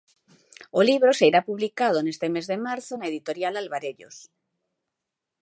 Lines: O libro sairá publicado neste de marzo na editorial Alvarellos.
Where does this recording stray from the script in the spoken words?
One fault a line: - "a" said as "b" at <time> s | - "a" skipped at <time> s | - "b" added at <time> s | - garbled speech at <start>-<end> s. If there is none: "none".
- "mes" added at 2.3 s